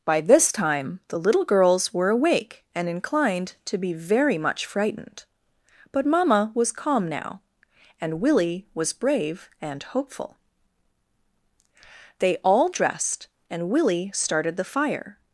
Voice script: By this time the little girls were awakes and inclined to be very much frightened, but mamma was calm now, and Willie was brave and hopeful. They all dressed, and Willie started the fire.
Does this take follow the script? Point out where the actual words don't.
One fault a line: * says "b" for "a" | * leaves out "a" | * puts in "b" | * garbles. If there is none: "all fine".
* says "awake" for "awakes"